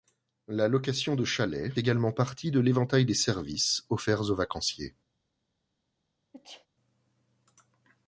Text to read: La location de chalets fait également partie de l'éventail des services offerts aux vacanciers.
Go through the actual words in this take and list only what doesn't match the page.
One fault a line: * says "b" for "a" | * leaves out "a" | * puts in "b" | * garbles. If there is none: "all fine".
* leaves out "fait"